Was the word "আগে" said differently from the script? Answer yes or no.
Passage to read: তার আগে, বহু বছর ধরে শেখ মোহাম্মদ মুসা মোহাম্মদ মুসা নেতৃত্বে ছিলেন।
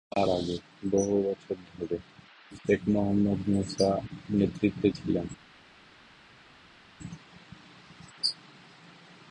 no